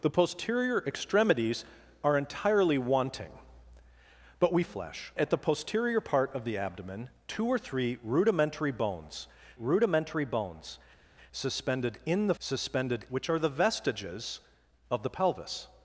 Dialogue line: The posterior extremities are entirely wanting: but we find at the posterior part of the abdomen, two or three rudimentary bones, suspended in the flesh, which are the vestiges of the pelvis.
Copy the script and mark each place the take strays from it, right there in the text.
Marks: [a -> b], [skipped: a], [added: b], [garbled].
The posterior extremities are entirely wanting: but we [find -> flesh] at the posterior part of the abdomen, two or three rudimentary bones, [added: rudimentary bones] suspended in the [flesh, -> suspended] which are the vestiges of the pelvis.